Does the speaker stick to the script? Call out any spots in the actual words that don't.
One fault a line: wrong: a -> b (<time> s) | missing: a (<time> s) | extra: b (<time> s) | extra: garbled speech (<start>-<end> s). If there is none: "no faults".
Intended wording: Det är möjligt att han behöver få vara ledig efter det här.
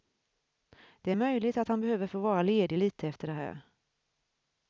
extra: lite (2.8 s)